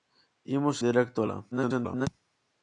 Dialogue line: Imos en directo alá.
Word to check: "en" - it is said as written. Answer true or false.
false